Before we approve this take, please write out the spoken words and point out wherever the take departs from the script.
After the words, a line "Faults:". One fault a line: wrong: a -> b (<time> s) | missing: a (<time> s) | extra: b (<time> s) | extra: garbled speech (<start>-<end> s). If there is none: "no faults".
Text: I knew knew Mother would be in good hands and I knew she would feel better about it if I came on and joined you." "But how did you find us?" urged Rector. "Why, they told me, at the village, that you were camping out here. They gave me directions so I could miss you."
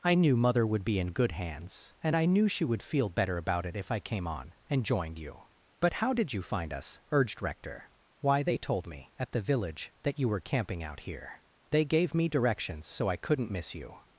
I knew Mother would be in good hands and I knew she would feel better about it if I came on and joined you." "But how did you find us?" urged Rector. "Why, they told me, at the village, that you were camping out here. They gave me directions so I couldn't miss you."
Faults:
missing: knew (0.3 s)
wrong: could -> couldn't (13.2 s)